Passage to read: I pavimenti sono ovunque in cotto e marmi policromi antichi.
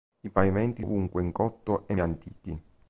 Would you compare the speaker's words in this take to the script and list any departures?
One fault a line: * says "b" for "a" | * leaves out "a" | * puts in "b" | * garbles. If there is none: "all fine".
* leaves out "sono"
* leaves out "marmi policromi"